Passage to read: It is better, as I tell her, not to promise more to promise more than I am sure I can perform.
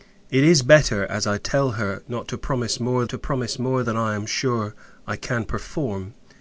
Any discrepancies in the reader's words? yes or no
no